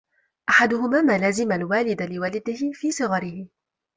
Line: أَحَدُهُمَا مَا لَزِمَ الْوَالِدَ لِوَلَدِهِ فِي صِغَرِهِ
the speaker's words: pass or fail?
pass